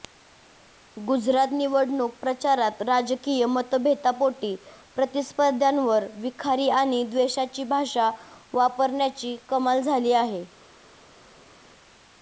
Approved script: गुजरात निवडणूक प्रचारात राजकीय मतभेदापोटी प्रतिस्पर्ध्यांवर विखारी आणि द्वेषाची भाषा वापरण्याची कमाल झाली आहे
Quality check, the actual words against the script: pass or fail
pass